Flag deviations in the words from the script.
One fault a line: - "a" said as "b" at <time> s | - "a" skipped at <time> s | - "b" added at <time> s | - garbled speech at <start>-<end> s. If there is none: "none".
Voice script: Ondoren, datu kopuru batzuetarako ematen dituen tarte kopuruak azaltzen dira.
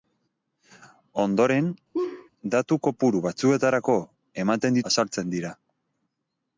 - "dituen tarte kopuruak" skipped at 4.8 s